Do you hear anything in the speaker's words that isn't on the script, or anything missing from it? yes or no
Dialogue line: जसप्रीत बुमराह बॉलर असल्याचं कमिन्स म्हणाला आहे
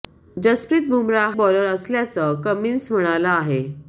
no